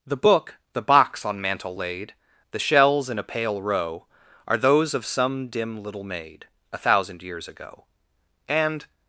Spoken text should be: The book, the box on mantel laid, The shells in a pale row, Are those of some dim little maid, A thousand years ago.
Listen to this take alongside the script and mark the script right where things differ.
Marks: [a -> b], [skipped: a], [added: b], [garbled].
The book, the box on mantel laid, The shells in a pale row, Are those of some dim little maid, A thousand years ago. [added: And]